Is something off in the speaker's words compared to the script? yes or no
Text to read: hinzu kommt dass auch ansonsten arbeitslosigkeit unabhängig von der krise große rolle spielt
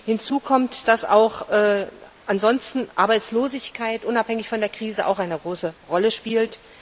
yes